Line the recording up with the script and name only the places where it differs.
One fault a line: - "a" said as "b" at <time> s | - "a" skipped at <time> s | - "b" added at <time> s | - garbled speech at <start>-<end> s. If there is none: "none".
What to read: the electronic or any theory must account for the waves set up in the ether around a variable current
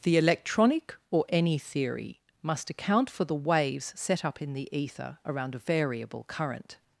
none